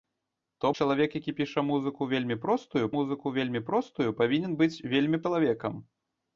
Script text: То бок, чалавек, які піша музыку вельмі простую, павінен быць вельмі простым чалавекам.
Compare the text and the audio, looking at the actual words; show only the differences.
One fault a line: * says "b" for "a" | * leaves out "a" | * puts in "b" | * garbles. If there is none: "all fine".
* leaves out "бок"
* puts in "музыку вельмі простую"
* leaves out "простым"